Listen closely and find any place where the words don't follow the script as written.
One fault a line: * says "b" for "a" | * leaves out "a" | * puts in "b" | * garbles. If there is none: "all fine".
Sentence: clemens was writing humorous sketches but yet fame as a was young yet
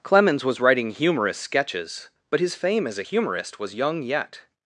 * says "his" for "yet"
* puts in "humorist"